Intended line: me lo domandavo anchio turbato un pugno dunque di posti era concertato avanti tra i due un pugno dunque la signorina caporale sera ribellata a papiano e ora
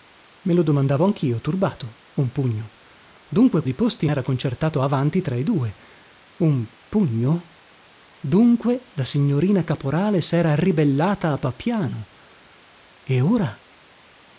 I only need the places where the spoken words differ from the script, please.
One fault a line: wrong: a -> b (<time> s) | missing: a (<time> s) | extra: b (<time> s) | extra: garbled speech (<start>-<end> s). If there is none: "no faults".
no faults